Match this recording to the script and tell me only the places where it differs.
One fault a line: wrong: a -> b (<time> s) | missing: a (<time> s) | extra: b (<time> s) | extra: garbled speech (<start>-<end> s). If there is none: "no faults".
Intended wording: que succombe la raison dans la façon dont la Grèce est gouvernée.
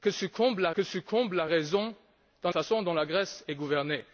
extra: que succombe la (0.7 s)
missing: la (2.5 s)